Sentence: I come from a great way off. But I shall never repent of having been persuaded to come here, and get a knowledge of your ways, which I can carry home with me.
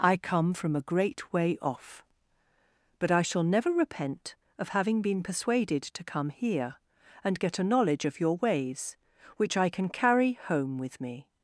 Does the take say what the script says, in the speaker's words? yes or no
yes